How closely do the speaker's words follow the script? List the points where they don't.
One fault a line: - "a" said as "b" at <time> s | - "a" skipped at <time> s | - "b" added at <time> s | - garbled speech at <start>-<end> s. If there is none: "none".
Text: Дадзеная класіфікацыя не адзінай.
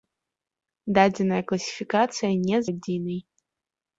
none